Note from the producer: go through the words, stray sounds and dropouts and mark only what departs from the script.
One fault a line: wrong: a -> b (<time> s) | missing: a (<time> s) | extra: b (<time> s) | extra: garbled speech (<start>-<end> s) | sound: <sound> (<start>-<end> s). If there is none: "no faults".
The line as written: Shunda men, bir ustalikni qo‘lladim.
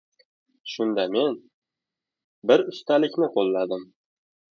no faults